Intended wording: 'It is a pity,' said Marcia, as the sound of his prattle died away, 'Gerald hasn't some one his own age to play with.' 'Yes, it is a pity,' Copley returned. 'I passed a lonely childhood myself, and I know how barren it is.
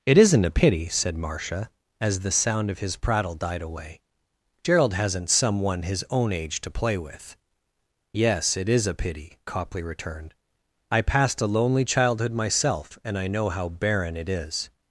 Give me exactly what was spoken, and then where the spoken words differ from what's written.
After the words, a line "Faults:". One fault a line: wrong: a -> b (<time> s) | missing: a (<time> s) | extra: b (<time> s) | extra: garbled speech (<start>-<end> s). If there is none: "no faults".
'It isn't a pity,' said Marcia, as the sound of his prattle died away, 'Gerald hasn't some one his own age to play with.' 'Yes, it is a pity,' Copley returned. 'I passed a lonely childhood myself, and I know how barren it is.
Faults:
wrong: is -> isn't (0.2 s)